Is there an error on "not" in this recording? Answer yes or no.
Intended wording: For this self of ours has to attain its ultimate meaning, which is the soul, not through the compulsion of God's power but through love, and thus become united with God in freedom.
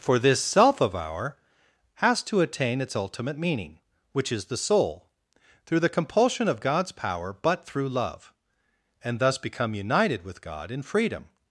yes